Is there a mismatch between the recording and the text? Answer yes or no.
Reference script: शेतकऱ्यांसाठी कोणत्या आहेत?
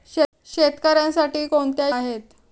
no